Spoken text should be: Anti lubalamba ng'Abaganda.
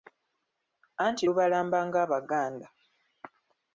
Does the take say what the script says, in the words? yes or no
yes